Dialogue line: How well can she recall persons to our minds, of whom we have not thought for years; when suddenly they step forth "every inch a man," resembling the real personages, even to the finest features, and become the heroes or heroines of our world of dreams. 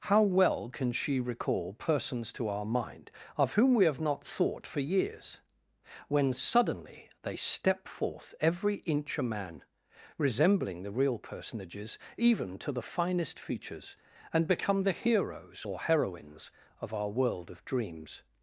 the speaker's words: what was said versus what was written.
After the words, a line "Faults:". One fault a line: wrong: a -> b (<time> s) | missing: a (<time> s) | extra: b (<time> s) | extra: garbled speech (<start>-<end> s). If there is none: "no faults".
How well can she recall persons to our mind, of whom we have not thought for years; when suddenly they step forth "every inch a man," resembling the real personages, even to the finest features, and become the heroes or heroines of our world of dreams.
Faults:
wrong: minds -> mind (2.6 s)